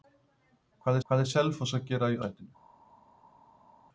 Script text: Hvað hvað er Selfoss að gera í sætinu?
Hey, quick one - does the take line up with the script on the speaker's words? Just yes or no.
yes